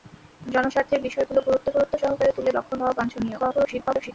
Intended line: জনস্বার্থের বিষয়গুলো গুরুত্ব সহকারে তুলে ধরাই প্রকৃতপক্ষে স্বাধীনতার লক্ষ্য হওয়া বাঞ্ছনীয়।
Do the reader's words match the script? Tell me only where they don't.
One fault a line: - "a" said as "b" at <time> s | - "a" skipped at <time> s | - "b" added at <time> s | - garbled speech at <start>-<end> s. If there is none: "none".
- "গুরুত্ব" added at 1.7 s
- "ধরাই প্রকৃতপক্ষে স্বাধীনতার" skipped at 2.5 s
- garbled speech at 3.4-4.1 s